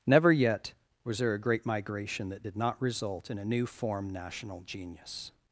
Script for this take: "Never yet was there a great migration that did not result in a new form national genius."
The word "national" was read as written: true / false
true